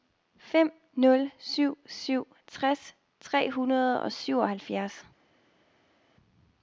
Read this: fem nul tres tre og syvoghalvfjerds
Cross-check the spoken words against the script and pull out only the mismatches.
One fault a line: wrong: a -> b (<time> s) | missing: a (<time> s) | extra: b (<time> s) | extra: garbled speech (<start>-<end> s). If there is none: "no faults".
extra: syv syv (1.4 s)
extra: hundrede (3.5 s)